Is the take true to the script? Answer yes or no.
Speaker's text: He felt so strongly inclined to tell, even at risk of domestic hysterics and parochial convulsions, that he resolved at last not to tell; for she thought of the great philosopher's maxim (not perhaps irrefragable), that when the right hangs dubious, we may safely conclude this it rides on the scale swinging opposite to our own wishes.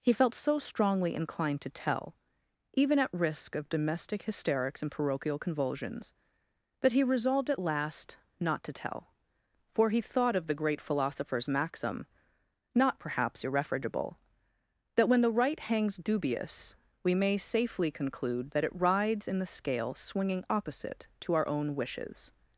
no